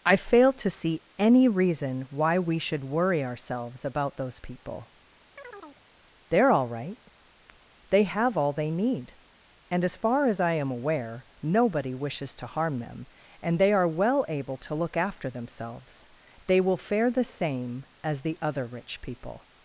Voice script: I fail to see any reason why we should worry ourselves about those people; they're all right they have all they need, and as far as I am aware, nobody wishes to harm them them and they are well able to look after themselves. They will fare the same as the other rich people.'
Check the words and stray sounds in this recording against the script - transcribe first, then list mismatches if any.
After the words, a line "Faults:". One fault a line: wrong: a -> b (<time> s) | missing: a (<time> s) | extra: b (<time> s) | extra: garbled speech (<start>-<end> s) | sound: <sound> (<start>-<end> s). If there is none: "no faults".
I fail to see any reason why we should worry ourselves about those people; they're all right they have all they need, and as far as I am aware, nobody wishes to harm them and they are well able to look after themselves. They will fare the same as the other rich people.'
Faults:
sound: chirp (5.4-5.8 s)
missing: them (13.1 s)